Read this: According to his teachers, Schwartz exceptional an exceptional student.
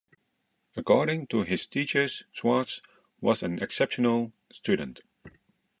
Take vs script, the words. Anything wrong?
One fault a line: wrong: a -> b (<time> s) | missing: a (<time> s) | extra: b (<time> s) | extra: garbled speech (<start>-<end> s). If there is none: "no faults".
wrong: exceptional -> was (3.2 s)